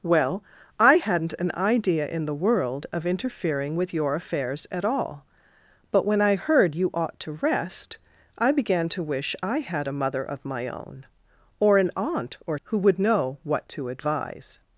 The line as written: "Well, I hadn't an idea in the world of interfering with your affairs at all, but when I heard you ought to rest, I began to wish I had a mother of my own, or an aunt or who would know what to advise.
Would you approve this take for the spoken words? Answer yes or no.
yes